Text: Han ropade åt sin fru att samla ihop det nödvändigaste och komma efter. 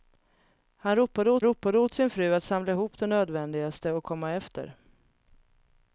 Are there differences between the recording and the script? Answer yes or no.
yes